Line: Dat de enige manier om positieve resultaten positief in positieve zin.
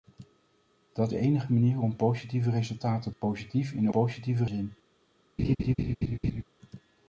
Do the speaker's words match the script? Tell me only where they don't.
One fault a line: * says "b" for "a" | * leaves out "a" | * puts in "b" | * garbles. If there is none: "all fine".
all fine